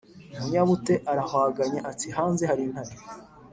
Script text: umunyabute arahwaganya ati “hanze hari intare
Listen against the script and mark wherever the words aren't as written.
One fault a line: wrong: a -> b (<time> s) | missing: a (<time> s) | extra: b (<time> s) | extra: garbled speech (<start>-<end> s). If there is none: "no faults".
no faults